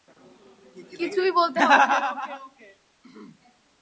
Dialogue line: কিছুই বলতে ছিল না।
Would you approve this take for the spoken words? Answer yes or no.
no